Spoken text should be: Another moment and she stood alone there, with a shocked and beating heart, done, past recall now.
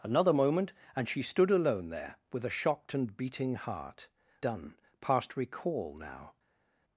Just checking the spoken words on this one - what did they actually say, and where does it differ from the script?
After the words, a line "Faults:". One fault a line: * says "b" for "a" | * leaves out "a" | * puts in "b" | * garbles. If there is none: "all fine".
Another moment and she stood alone there, with a shocked and beating heart, done, past recall now.
Faults:
all fine